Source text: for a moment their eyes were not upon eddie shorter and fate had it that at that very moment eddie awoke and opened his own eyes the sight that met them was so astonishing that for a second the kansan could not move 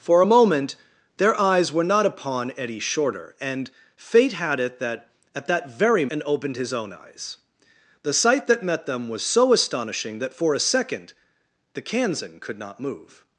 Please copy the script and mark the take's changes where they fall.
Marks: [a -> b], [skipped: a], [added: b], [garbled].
for a moment their eyes were not upon eddie shorter and fate had it that at that very [skipped: moment eddie awoke] and opened his own eyes the sight that met them was so astonishing that for a second the kansan could not move